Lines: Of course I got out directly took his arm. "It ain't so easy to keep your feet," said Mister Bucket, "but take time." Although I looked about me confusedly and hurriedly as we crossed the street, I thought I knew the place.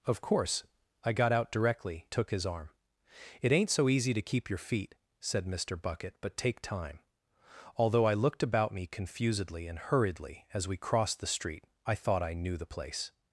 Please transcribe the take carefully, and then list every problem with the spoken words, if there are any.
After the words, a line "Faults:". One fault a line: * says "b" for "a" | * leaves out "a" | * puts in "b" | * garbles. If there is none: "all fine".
Of course I got out directly took his arm. "It ain't so easy to keep your feet," said Mister Bucket, "but take time." Although I looked about me confusedly and hurriedly as we crossed the street, I thought I knew the place.
Faults:
all fine